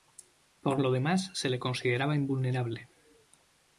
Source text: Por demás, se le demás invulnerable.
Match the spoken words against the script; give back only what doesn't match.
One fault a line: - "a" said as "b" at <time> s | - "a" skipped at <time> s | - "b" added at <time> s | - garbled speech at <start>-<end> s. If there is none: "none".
- "lo" added at 0.8 s
- "demás" said as "consideraba" at 1.6 s